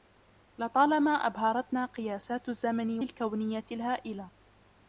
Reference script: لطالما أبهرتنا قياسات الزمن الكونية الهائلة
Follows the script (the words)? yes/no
yes